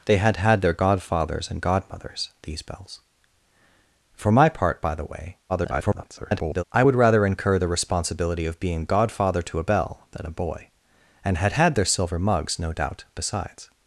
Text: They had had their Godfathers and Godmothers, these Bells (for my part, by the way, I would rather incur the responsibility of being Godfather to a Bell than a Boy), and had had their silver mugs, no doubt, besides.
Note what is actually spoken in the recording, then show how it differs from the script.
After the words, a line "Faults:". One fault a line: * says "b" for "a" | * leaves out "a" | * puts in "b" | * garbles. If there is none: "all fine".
They had had their Godfathers and Godmothers, these Bells (for my part, by the way, [garbled] I would rather incur the responsibility of being Godfather to a Bell than a Boy), and had had their silver mugs, no doubt, besides.
Faults:
* garbles